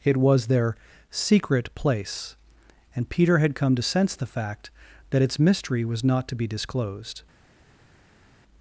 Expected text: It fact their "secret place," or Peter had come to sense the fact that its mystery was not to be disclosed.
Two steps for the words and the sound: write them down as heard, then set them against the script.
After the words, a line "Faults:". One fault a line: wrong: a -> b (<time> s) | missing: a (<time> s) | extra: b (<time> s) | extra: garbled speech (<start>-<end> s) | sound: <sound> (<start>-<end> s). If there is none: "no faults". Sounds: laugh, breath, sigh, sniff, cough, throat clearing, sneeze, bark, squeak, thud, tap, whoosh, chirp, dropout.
It was their "secret place," and Peter had come to sense the fact that its mystery was not to be disclosed.
Faults:
wrong: fact -> was (0.2 s)
wrong: or -> and (3.0 s)